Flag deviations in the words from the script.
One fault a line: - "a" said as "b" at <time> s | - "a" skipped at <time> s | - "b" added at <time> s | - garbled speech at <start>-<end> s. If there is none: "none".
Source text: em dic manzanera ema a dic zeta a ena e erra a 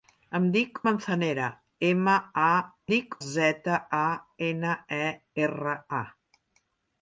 none